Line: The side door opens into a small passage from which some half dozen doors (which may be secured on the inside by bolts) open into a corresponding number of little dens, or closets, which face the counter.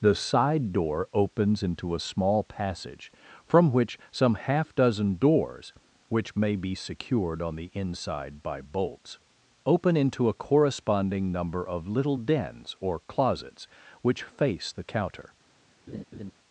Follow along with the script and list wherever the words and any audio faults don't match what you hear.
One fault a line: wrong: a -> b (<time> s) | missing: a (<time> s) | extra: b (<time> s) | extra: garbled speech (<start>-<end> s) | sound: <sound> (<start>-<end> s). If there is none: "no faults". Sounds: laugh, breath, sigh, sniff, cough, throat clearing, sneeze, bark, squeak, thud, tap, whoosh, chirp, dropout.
sound: laugh (15.9-16.3 s)